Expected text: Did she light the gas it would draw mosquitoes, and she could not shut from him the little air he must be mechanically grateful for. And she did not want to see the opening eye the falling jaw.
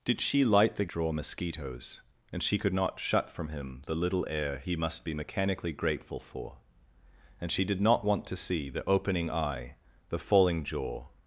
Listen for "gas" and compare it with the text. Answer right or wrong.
wrong